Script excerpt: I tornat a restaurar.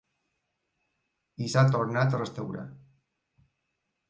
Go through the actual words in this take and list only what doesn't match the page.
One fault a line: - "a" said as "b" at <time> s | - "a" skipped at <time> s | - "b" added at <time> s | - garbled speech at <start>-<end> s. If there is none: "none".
- "s'ha" added at 1.5 s